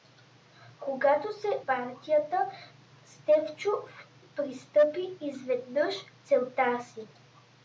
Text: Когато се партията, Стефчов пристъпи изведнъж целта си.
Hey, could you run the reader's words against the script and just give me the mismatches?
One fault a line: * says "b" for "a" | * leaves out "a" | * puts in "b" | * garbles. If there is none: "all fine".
all fine